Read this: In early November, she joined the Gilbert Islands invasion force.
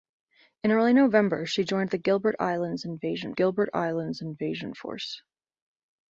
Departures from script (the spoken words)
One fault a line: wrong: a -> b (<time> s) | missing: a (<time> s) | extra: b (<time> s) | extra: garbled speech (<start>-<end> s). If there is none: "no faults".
extra: Gilbert Islands invasion (3.3 s)